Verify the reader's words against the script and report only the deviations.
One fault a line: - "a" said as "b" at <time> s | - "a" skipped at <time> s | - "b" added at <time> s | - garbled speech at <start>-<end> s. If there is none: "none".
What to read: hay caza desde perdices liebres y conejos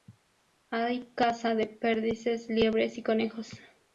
- "desde" said as "de" at 1.5 s